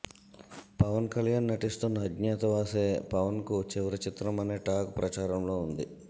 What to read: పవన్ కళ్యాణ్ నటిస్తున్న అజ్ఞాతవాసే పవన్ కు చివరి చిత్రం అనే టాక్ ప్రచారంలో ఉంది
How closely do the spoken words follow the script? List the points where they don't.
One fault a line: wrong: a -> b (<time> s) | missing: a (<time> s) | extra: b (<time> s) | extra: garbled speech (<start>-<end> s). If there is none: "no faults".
no faults